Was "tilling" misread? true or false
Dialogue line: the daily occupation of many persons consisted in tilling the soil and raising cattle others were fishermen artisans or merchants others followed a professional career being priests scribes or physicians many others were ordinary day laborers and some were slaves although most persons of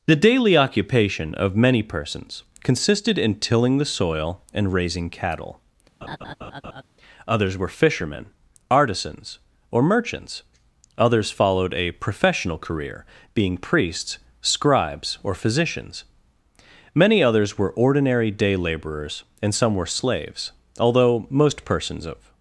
false